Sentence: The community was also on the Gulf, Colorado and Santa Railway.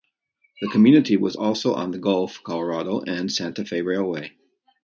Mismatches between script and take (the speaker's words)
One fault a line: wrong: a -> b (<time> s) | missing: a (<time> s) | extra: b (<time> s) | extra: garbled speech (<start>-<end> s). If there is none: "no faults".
extra: Fe (3.6 s)